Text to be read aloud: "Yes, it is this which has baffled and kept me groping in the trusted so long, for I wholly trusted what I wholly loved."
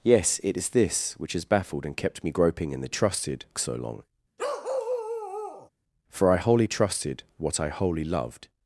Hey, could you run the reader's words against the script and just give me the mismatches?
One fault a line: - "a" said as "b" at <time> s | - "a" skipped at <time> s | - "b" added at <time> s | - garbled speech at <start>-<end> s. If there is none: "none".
none